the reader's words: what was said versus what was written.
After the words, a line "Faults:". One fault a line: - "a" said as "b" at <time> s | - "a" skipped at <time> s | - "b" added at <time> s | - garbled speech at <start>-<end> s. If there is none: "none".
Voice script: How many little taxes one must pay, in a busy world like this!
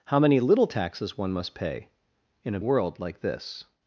How many little taxes one must pay, in a world like this!
Faults:
- "busy" skipped at 2.6 s